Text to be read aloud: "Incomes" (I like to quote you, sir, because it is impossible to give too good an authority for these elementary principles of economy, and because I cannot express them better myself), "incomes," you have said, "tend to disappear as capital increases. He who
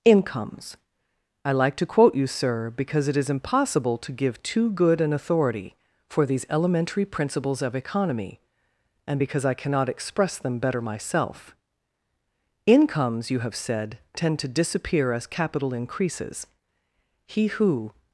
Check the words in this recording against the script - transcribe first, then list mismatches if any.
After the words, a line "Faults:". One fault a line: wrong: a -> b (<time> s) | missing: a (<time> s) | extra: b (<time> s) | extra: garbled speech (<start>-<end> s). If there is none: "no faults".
"Incomes" (I like to quote you, sir, because it is impossible to give too good an authority for these elementary principles of economy, and because I cannot express them better myself), "incomes," you have said, "tend to disappear as capital increases. He who
Faults:
no faults